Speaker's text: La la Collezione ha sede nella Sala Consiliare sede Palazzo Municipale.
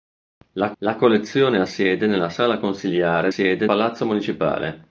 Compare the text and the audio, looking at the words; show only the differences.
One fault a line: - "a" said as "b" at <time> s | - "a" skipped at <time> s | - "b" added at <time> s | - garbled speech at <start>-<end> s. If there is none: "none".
none